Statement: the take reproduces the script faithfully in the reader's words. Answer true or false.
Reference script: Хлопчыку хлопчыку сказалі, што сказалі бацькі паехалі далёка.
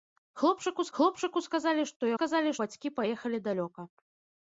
true